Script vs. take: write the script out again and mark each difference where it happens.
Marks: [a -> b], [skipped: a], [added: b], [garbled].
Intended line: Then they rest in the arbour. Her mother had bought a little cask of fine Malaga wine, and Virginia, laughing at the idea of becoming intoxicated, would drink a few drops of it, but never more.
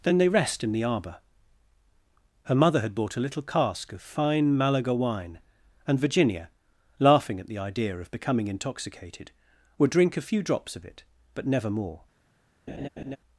Then they rest in the arbour. Her mother had bought a little cask of fine Malaga wine, and Virginia, laughing at the idea of becoming intoxicated, would drink a few drops of it, but never more.